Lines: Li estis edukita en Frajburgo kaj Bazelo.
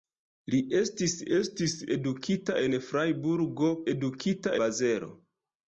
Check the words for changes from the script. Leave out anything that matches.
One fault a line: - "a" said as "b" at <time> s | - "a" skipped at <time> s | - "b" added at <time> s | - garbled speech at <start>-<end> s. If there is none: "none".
- "estis" added at 1.4 s
- "kaj" said as "edukita" at 3.9 s